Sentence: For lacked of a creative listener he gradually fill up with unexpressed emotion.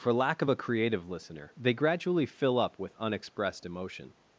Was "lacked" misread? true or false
true